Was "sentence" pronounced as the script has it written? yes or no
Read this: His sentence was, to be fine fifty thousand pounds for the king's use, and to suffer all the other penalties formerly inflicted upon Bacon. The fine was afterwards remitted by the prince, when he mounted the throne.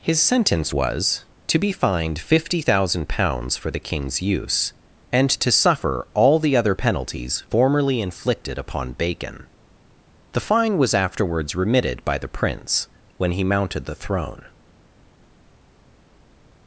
yes